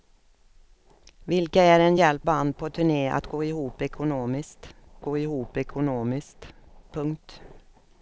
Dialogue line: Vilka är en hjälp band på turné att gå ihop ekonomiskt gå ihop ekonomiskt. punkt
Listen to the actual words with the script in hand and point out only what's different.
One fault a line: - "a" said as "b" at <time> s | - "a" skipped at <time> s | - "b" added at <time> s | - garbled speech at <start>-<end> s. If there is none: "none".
none